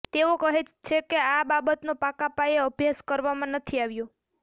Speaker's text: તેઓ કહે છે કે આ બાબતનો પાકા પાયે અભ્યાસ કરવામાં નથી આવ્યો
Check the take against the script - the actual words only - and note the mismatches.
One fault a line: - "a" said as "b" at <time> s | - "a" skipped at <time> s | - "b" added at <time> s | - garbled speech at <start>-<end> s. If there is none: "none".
none